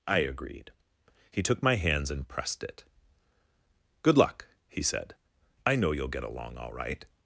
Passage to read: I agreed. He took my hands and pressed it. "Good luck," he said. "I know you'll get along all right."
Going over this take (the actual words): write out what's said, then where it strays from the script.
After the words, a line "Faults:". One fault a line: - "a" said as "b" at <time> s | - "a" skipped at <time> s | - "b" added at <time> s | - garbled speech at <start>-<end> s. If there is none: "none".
I agreed. He took my hands and pressed it. "Good luck," he said. "I know you'll get along all right."
Faults:
none